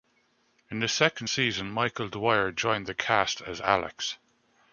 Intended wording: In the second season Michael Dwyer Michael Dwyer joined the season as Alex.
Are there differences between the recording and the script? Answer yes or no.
yes